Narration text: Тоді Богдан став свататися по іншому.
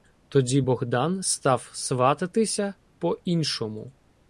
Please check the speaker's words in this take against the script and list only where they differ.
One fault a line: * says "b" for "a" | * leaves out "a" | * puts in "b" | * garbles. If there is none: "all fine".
all fine